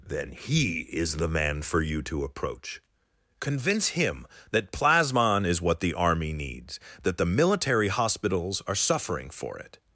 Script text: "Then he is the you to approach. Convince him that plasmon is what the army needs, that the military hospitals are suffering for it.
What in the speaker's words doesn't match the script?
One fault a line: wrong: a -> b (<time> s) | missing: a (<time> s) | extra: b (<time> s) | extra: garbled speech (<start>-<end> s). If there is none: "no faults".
extra: man for (1.3 s)